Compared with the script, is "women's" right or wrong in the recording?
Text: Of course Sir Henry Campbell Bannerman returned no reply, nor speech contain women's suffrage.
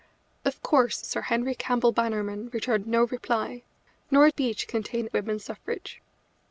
right